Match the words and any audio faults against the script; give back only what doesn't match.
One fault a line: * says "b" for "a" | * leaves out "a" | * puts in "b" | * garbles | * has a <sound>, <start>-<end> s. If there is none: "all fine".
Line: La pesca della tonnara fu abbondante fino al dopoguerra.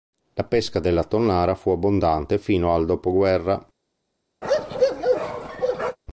* has a bark, 4.4-6.0 s